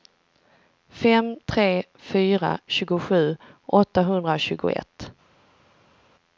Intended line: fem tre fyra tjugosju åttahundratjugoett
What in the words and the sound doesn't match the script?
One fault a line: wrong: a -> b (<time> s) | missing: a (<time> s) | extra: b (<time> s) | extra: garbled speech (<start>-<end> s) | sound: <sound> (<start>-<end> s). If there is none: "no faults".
no faults